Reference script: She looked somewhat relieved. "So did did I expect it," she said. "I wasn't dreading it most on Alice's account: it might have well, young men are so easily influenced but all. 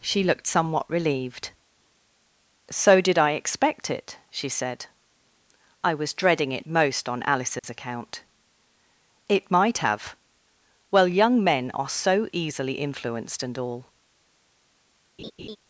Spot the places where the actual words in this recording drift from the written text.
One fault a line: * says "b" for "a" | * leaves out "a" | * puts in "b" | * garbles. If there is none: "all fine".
* leaves out "did"
* says "was" for "wasn't"
* says "and" for "but"